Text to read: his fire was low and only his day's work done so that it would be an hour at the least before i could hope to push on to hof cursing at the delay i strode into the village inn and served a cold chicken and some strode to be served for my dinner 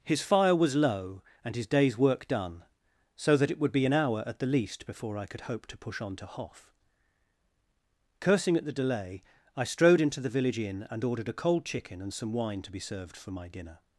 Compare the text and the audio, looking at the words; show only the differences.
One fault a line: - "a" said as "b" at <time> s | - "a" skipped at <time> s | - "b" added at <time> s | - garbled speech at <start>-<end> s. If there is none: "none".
- "only" skipped at 1.6 s
- "served" said as "ordered" at 11.0 s
- "strode" said as "wine" at 12.3 s